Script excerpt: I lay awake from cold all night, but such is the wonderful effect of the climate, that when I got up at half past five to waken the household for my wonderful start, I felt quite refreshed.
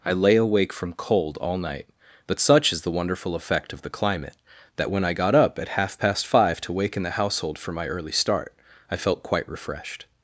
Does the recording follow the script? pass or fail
fail